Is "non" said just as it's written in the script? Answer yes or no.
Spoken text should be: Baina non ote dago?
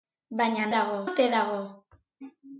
no